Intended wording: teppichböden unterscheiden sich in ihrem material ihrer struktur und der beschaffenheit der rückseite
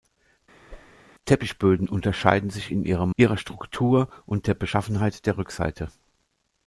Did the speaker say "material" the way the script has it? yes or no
no